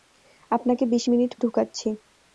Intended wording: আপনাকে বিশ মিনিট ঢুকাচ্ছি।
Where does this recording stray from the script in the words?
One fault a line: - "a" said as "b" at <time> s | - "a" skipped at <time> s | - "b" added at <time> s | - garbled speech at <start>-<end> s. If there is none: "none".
none